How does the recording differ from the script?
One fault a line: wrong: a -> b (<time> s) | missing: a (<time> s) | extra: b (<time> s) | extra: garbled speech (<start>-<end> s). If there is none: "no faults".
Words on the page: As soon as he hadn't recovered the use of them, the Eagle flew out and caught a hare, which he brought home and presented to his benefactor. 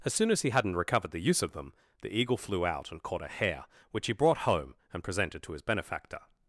no faults